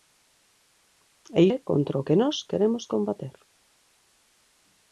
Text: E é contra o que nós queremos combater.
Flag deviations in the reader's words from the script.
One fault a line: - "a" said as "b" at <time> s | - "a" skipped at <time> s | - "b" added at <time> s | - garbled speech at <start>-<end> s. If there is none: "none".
none